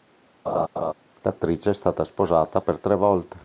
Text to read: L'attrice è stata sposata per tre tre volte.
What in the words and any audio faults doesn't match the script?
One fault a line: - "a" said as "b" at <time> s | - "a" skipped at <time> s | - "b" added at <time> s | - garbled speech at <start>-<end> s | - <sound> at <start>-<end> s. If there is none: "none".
- laugh at 0.5-0.9 s
- "tre" skipped at 2.9 s